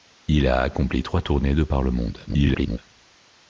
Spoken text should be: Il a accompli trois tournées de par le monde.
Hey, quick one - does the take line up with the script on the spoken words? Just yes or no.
no